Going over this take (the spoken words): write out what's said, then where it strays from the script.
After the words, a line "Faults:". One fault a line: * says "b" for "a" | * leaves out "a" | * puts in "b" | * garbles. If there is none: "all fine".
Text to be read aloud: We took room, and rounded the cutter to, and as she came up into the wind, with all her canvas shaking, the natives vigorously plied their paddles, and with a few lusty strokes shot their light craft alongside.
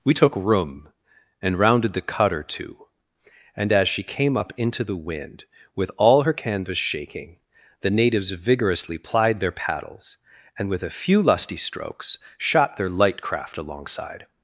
We took room, and rounded the cutter to, and as she came up into the wind, with all her canvas shaking, the natives vigorously plied their paddles, and with a few lusty strokes shot their light craft alongside.
Faults:
all fine